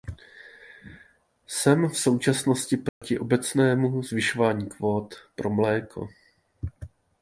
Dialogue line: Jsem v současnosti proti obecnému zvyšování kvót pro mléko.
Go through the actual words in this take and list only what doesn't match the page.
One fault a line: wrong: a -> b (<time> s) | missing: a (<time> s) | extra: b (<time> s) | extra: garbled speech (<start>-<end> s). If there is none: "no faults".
no faults